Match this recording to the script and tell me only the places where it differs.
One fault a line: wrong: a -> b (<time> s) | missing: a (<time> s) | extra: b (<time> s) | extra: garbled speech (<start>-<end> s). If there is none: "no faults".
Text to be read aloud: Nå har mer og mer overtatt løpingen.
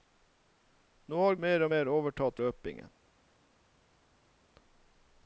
no faults